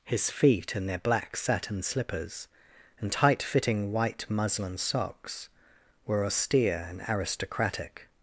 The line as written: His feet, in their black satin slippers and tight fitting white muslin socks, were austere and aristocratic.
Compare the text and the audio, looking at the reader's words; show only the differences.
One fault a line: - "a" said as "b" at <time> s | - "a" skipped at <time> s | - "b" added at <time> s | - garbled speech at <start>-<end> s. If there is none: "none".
none